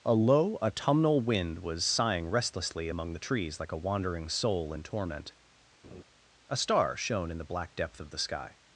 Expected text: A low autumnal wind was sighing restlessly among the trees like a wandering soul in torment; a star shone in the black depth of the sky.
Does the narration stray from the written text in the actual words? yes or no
no